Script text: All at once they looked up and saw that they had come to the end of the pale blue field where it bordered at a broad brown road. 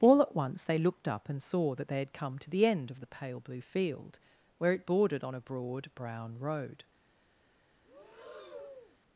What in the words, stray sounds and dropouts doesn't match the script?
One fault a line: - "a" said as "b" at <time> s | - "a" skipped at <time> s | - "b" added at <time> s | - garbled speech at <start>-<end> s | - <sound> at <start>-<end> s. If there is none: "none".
- "at" said as "on" at 5.2 s
- breath at 7.8-9.0 s